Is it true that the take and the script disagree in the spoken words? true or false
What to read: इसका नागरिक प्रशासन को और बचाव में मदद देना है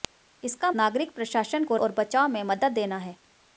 false